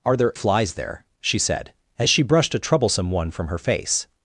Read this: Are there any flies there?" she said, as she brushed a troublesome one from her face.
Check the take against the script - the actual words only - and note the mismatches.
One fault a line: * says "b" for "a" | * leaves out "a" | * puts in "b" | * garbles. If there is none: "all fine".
* leaves out "any"